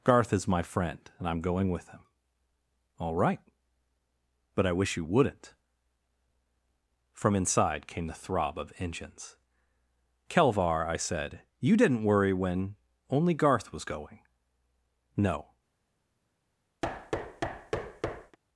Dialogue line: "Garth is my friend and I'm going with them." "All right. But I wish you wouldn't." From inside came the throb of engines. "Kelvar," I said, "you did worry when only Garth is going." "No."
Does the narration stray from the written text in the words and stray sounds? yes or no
yes